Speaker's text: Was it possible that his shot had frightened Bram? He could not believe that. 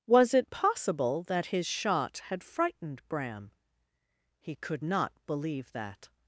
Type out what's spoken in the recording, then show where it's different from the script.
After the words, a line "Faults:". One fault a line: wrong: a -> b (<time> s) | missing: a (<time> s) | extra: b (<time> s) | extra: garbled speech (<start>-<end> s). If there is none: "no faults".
Was it possible that his shot had frightened Bram? He could not believe that.
Faults:
no faults